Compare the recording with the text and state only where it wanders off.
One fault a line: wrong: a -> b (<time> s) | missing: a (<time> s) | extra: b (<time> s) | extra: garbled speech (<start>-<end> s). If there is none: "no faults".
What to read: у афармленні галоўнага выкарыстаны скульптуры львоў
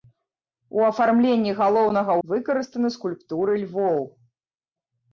no faults